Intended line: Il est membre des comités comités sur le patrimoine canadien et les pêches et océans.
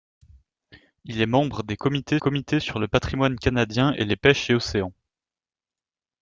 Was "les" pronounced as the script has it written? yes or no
yes